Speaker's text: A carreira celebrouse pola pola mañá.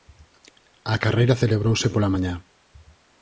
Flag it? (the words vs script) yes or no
yes